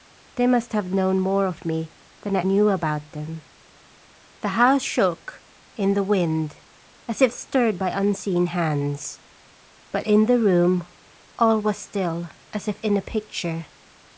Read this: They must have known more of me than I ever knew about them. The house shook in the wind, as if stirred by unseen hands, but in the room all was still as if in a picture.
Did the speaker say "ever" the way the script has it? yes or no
no